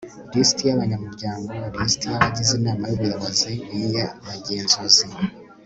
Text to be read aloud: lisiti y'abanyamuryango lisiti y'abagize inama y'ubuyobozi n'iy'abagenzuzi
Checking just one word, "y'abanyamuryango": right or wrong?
right